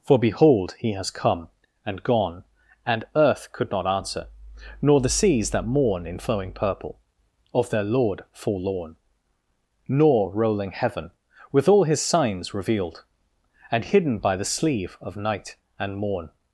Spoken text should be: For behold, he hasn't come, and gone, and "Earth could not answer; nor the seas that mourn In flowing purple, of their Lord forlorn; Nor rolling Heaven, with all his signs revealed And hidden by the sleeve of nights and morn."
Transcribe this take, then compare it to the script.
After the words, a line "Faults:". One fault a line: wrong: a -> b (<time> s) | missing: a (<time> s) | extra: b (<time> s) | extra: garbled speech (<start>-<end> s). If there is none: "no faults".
For behold, he has come, and gone, and "Earth could not answer; nor the seas that mourn In flowing purple, of their Lord forlorn; Nor rolling Heaven, with all his signs revealed And hidden by the sleeve of night and morn."
Faults:
wrong: hasn't -> has (0.9 s)
wrong: nights -> night (15.1 s)